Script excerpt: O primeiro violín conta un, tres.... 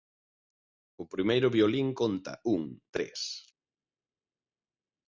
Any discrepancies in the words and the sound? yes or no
no